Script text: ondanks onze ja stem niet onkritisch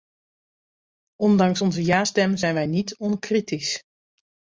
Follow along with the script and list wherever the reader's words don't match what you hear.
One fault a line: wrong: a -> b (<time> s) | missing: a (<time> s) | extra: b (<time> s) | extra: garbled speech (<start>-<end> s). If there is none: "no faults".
extra: zijn wij (2.4 s)